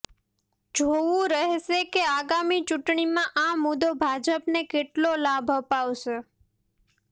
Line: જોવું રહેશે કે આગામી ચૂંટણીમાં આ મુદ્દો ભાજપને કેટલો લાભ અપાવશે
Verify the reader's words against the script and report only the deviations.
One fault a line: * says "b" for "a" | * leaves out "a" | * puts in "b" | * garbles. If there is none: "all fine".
all fine